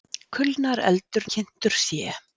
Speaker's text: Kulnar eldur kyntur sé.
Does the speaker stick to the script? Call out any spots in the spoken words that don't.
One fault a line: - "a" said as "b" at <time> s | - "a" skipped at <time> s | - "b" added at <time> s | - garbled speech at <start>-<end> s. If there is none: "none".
none